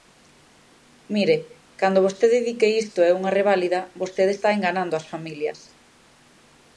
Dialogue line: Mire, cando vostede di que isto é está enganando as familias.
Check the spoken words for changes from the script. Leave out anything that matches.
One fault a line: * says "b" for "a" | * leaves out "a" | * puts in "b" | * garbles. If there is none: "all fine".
* puts in "unha reválida vostede"